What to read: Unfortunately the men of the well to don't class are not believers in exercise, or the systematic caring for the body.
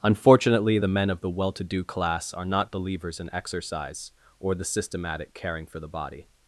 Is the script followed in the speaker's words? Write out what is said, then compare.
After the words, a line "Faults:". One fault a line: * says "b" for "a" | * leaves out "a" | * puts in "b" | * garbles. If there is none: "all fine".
Unfortunately the men of the well to do class are not believers in exercise, or the systematic caring for the body.
Faults:
* says "do" for "don't"